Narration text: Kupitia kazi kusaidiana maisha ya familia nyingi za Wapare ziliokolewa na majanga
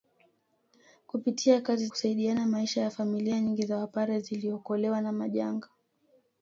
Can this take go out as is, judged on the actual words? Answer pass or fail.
pass